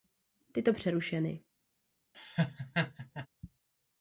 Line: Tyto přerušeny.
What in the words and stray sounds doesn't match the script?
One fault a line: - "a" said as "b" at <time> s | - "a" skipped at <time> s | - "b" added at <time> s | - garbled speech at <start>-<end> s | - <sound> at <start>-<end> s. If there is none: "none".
- laugh at 2.1-3.3 s